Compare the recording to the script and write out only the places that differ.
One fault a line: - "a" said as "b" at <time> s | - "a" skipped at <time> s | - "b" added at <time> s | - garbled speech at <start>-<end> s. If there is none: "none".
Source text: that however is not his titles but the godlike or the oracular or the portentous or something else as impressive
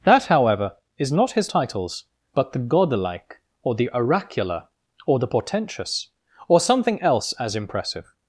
none